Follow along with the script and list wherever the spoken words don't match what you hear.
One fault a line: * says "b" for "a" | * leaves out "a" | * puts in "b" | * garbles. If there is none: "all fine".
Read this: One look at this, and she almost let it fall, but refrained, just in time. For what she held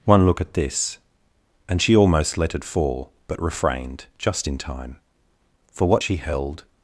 all fine